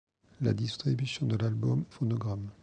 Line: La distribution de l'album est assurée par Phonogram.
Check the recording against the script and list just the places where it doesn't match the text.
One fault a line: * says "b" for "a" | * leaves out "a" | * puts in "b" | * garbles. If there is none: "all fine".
* leaves out "est assurée par"